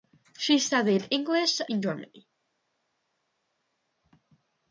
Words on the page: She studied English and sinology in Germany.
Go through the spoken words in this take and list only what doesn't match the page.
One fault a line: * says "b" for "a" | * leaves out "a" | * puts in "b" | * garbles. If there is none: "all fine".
* leaves out "and sinology"